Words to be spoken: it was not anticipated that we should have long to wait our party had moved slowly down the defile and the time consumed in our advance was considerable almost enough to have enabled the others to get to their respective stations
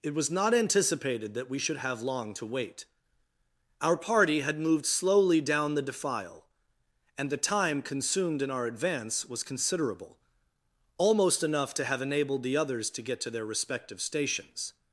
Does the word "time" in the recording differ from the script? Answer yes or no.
no